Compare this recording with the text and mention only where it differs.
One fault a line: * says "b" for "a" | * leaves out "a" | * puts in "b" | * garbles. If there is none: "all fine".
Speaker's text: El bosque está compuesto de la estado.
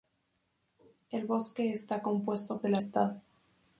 all fine